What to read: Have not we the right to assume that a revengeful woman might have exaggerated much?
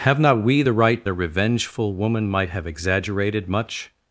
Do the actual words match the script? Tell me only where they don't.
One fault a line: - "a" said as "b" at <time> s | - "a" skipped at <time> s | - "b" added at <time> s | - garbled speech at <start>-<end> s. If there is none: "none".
- "to assume that" skipped at 1.1 s